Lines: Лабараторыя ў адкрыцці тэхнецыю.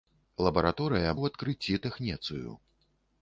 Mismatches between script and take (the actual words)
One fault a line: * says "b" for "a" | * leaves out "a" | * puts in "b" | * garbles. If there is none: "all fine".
all fine